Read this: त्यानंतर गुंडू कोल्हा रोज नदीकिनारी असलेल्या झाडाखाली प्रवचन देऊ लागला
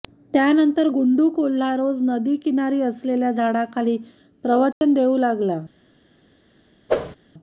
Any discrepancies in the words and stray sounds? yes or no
yes